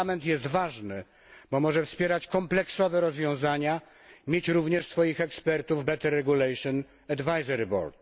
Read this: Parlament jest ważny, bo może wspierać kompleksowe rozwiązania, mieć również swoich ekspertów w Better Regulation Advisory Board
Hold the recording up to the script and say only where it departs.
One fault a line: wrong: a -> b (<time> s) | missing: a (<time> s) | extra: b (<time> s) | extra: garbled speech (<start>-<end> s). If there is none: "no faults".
no faults